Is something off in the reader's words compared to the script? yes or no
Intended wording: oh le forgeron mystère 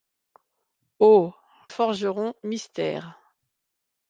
yes